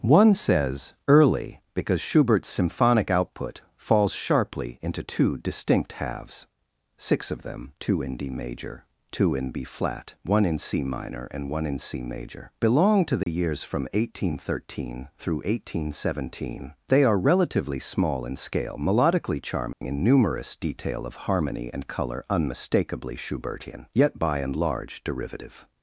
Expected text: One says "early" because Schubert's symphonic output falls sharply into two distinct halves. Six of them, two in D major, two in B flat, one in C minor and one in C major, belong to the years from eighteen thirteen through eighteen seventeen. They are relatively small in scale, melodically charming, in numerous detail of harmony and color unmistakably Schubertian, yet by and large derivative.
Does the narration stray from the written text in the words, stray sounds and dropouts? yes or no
yes